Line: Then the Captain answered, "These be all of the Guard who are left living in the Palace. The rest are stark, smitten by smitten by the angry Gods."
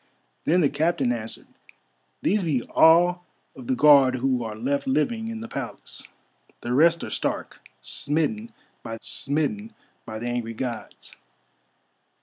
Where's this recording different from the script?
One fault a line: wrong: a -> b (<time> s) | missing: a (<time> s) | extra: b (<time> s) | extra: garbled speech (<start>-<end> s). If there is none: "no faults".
no faults